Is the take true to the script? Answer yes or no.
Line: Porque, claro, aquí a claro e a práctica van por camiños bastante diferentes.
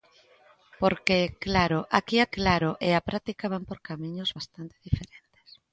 yes